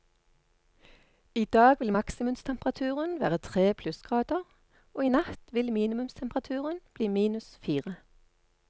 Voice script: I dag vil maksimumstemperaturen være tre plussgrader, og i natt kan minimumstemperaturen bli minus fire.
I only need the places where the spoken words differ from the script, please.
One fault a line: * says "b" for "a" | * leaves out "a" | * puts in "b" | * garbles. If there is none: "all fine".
* says "vil" for "kan"